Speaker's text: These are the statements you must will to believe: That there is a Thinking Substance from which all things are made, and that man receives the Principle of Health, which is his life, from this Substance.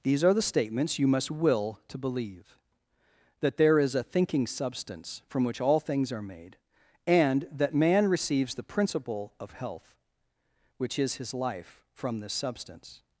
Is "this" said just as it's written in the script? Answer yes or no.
yes